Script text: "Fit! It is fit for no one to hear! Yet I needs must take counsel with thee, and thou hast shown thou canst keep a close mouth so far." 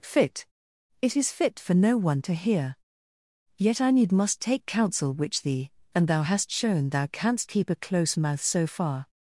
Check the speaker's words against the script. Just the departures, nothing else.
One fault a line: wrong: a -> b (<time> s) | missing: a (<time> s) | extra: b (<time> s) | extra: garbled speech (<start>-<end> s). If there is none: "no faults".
wrong: needs -> need (3.9 s)
wrong: with -> which (5.1 s)